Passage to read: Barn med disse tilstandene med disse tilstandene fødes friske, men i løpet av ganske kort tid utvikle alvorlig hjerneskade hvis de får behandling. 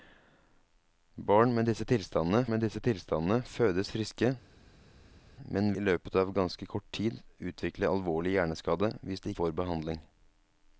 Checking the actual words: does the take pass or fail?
pass